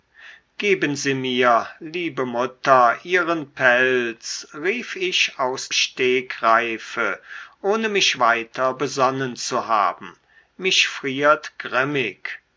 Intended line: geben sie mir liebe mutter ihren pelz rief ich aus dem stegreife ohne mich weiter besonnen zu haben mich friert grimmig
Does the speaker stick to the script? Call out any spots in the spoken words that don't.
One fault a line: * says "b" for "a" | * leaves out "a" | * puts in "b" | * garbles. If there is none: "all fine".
* leaves out "dem"